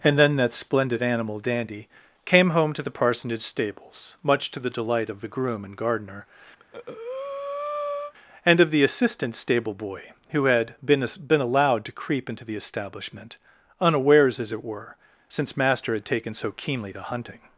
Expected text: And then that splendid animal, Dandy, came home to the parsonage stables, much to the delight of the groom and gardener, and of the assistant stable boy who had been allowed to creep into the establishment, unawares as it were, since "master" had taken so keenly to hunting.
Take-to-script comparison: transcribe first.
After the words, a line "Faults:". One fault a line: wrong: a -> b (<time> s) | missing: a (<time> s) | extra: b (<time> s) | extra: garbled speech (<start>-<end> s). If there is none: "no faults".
And then that splendid animal, Dandy, came home to the parsonage stables, much to the delight of the groom and gardener, and of the assistant stable boy who had been been allowed to creep into the establishment, unawares as it were, since "master" had taken so keenly to hunting.
Faults:
extra: been (11.3 s)